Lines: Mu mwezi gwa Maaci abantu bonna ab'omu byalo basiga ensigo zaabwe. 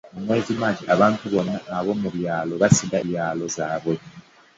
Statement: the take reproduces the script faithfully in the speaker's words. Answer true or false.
false